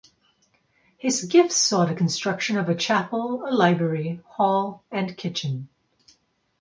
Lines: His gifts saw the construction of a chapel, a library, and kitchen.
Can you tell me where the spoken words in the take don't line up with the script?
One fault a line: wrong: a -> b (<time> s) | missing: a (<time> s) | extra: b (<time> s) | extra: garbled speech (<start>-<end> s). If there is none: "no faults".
extra: hall (4.3 s)